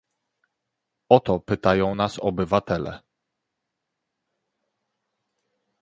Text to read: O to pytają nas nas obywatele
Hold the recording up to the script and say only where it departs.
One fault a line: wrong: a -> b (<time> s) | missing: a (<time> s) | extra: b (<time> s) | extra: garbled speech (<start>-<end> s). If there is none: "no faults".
missing: nas (2.2 s)